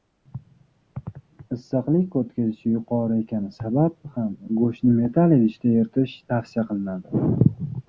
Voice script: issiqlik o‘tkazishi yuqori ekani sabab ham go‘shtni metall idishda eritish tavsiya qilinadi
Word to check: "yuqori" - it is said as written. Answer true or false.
true